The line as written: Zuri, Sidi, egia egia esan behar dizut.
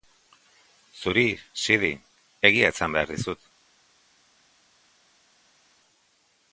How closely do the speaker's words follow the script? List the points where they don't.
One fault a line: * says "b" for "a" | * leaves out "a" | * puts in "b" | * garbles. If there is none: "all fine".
* leaves out "egia"